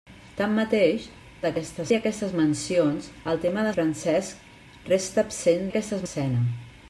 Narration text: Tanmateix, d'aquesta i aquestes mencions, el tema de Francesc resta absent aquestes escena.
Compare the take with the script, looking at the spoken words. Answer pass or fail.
pass